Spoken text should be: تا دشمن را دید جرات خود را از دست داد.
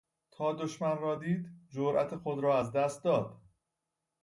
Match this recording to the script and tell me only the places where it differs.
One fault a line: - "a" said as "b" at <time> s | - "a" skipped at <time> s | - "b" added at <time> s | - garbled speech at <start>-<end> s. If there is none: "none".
none